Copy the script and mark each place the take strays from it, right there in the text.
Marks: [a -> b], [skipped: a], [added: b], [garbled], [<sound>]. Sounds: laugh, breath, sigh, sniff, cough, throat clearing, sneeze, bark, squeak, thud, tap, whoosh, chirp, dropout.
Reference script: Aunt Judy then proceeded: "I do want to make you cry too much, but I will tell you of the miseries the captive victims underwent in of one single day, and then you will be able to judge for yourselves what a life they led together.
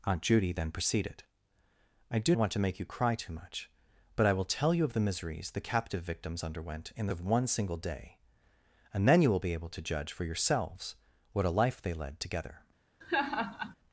Aunt Judy then proceeded: "I do want to make you cry too much, but I will tell you of the miseries the captive victims underwent in of one single day, and then you will be able to judge for yourselves what a life they led together. [laugh]